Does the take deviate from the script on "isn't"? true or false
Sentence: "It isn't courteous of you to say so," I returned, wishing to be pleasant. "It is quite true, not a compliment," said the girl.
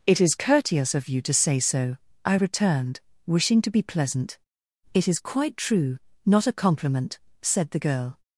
true